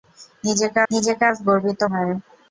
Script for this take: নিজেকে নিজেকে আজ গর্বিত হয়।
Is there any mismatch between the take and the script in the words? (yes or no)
no